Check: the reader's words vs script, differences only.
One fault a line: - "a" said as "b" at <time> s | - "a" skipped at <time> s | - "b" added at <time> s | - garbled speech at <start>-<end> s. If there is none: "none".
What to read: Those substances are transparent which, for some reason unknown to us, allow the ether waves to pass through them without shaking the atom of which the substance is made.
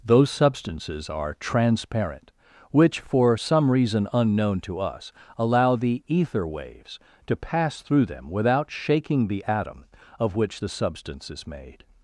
none